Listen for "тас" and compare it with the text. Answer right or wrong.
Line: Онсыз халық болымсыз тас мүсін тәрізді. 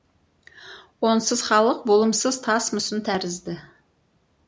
right